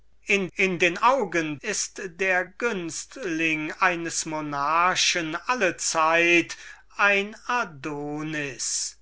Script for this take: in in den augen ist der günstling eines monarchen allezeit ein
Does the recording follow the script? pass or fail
pass